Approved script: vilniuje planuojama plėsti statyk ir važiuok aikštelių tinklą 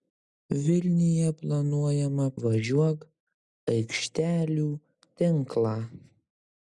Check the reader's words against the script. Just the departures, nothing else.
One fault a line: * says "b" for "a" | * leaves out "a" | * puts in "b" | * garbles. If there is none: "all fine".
* leaves out "plėsti statyk ir"